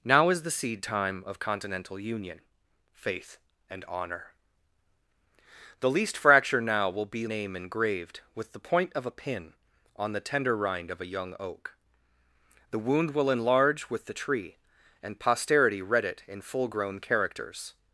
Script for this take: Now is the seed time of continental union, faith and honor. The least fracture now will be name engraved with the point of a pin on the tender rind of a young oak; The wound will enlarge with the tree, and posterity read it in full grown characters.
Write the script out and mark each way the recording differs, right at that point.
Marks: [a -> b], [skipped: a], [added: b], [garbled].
Now is the seed time of continental union, faith and honor. The least fracture now will be name engraved with the point of a pin on the tender rind of a young oak; The wound will enlarge with the tree, and posterity read it in full grown characters.